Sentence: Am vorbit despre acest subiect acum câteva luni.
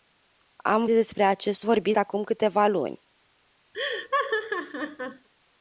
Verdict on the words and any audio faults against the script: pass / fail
fail